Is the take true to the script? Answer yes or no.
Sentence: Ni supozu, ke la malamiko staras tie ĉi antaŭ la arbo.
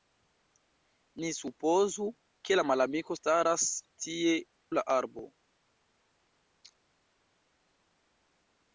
no